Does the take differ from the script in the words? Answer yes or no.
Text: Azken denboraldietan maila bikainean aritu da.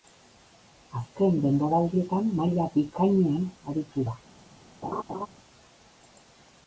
no